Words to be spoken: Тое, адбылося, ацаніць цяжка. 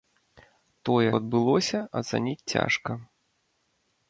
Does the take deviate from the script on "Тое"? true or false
false